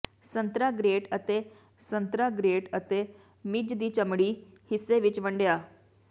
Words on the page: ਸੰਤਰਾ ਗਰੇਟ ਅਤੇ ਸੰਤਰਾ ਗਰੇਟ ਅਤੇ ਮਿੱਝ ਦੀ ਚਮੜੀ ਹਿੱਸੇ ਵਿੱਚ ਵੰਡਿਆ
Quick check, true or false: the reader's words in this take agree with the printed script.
true